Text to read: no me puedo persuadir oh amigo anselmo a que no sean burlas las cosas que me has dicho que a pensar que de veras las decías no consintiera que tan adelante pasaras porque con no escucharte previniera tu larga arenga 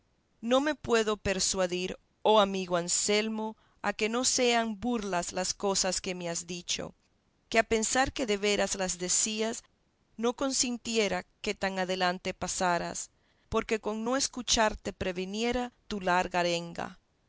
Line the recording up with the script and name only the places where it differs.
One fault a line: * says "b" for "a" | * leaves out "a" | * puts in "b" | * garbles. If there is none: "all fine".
all fine